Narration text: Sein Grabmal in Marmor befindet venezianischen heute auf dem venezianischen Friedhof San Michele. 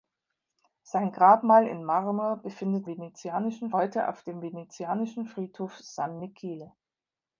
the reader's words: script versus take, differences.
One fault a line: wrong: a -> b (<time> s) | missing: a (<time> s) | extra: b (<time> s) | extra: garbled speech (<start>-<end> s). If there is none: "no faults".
no faults